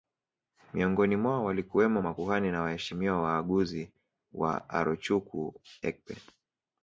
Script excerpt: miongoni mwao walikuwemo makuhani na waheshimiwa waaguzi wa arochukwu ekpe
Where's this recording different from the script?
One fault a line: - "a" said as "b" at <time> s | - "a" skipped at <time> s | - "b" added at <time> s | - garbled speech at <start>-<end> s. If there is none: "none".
none